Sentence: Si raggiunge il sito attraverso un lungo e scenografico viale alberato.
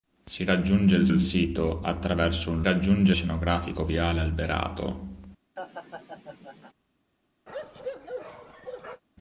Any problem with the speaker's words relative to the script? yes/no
yes